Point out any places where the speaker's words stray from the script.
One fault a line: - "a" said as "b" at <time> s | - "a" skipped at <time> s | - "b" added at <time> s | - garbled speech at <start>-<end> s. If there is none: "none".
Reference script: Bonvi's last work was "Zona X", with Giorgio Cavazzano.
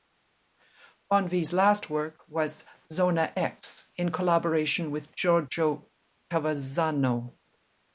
- "in collaboration" added at 4.0 s